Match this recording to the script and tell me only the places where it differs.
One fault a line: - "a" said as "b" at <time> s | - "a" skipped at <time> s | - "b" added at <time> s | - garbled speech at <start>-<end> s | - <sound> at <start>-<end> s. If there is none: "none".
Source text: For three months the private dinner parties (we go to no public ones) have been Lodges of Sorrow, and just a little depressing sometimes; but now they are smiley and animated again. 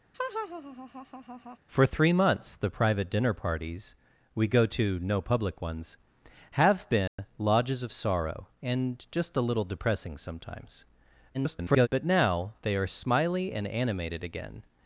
- laugh at 0.1-1.6 s
- dropout at 7.1-7.2 s
- garbled speech at 11.3-11.9 s